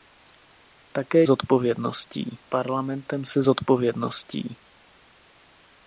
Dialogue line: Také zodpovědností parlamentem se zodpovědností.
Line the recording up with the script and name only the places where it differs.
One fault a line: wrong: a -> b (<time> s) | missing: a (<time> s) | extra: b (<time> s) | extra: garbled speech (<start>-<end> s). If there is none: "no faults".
no faults